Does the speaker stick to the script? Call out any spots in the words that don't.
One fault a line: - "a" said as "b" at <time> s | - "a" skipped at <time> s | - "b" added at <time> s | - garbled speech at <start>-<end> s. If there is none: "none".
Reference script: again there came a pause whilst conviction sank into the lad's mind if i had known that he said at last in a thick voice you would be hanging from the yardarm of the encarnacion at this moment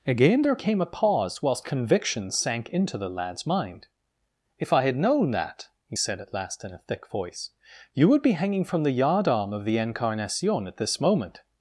none